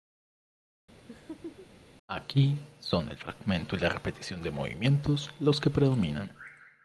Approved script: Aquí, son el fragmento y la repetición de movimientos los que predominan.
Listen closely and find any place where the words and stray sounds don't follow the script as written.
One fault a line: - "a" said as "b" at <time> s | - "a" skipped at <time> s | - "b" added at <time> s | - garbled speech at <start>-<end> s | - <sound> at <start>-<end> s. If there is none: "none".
- laugh at 1.1-1.7 s